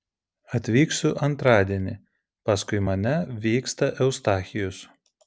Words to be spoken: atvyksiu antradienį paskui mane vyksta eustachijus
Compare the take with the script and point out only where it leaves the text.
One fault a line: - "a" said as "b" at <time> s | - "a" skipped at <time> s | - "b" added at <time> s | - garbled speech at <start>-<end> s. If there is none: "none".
none